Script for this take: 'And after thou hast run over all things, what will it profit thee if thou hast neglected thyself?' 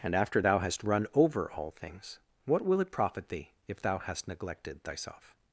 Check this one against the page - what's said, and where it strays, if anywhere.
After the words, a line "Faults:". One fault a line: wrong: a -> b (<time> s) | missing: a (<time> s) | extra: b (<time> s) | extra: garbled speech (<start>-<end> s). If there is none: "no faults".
'And after thou hast run over all things, what will it profit thee if thou hast neglected thyself?'
Faults:
no faults